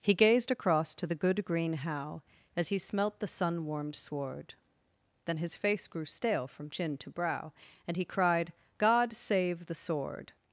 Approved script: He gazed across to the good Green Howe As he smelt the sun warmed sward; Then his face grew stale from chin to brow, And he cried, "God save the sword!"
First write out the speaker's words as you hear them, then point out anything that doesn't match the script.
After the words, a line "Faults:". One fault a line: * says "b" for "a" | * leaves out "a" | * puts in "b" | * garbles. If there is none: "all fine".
He gazed across to the good Green Howe As he smelt the sun warmed sward; Then his face grew stale from chin to brow, And he cried, "God save the sword!"
Faults:
all fine